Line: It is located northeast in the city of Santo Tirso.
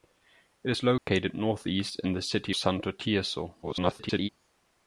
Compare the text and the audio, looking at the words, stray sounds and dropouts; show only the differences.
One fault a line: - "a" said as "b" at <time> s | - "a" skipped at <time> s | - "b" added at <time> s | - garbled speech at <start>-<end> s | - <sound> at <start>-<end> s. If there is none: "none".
- dropout at 1.0-1.1 s
- "of" skipped at 2.6 s
- garbled speech at 3.6-4.3 s